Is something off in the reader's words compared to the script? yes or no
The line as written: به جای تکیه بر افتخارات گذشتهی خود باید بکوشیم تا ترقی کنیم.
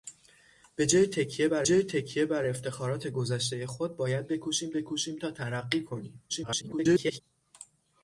yes